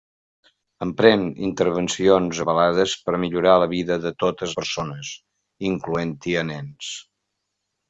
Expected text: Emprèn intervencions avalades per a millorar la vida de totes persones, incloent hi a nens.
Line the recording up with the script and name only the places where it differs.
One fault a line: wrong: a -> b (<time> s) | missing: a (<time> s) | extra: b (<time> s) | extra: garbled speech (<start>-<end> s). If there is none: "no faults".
no faults